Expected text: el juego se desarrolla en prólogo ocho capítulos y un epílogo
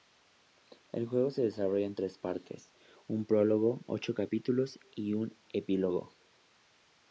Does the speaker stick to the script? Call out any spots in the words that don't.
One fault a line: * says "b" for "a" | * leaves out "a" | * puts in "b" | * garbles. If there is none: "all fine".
* puts in "tres partes un"